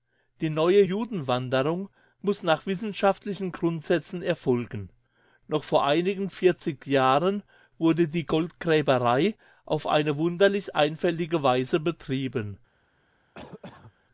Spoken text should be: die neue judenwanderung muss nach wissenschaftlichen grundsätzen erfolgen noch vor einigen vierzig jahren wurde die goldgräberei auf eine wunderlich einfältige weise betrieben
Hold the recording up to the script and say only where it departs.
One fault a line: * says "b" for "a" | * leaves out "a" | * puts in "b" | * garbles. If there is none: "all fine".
all fine